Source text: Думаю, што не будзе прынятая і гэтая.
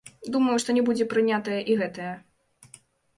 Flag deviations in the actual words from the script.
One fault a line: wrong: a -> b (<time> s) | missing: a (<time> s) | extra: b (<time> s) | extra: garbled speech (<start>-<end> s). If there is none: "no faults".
no faults